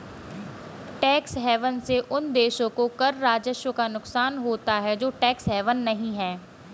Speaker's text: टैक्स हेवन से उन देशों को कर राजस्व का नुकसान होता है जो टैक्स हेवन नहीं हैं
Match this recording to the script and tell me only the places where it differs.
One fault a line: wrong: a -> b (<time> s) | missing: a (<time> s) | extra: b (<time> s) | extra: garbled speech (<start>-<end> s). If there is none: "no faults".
no faults